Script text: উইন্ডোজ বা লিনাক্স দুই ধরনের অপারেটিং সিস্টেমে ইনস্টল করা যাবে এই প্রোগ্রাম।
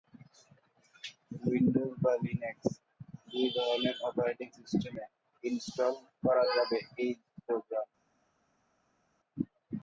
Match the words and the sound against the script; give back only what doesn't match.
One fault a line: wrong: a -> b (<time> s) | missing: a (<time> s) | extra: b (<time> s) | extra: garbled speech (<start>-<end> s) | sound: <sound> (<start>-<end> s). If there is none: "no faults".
no faults